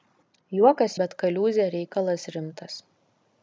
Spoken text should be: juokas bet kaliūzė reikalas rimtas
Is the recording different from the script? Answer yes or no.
no